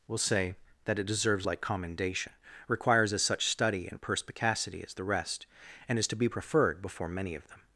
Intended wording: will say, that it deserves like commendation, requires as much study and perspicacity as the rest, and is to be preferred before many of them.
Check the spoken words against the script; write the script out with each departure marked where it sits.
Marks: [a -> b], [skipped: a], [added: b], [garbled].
will say, that it deserves like commendation, requires as [much -> such] study and perspicacity as the rest, and is to be preferred before many of them.